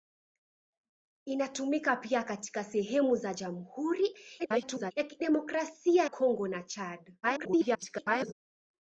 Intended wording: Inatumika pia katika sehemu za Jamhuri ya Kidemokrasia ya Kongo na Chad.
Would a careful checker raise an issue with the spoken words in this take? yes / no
yes